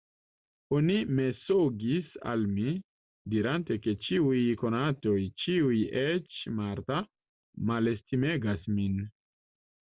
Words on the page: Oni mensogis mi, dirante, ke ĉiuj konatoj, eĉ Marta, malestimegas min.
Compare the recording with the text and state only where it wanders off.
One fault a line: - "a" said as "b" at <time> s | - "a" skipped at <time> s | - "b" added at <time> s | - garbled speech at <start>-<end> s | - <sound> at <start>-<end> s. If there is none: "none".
- "al" added at 2.3 s
- "ĉiuj" added at 5.4 s